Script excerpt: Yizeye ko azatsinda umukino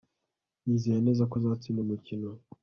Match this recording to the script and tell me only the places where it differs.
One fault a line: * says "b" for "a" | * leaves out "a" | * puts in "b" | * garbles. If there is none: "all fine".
* puts in "neza"